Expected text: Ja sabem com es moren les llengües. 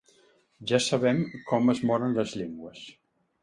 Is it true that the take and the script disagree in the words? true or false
false